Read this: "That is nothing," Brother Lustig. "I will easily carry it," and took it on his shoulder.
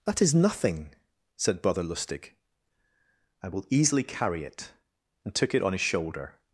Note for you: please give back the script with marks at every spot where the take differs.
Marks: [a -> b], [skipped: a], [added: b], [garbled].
"That is nothing," [added: said] Brother Lustig. "I will easily carry it," and took it on his shoulder.